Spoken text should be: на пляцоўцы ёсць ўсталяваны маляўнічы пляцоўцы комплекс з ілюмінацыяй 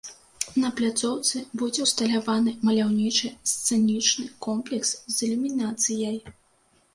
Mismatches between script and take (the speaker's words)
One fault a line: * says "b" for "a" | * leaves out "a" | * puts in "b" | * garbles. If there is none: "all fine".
* says "будзе" for "ёсць"
* says "сцэнічны" for "пляцоўцы"